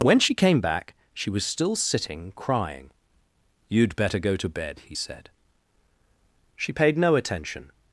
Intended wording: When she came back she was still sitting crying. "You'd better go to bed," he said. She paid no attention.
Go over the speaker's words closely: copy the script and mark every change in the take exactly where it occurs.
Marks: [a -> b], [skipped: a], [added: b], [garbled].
When she came back she was still sitting crying. "You'd better go to bed," he said. She paid no attention.